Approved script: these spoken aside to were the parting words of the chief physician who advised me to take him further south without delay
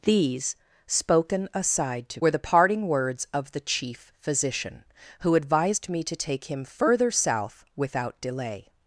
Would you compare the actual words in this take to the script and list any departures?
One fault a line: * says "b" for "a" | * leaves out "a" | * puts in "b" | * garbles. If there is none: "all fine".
all fine